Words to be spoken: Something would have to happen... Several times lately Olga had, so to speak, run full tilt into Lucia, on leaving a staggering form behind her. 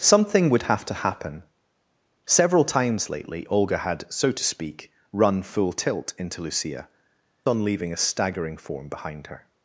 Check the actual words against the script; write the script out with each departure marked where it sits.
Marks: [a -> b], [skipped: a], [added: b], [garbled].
Something would have to happen... Several times lately Olga had, so to speak, run full tilt into Lucia, on leaving a staggering form behind her.